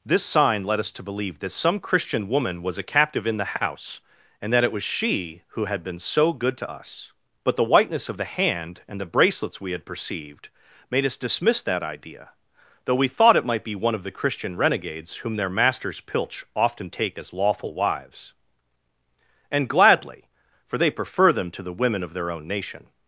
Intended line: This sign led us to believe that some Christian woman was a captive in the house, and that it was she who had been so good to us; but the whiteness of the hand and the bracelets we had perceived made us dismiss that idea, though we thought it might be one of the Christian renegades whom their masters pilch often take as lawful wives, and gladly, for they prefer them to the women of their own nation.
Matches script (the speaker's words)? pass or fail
pass